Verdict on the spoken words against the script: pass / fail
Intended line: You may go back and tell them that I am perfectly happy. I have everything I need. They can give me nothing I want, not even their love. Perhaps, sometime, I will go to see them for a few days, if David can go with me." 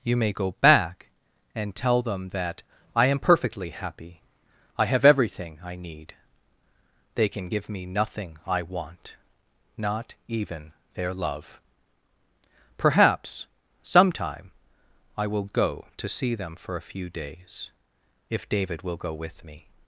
fail